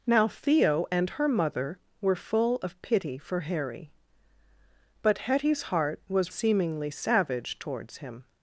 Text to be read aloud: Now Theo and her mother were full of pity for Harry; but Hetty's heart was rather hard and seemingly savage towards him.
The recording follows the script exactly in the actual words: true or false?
false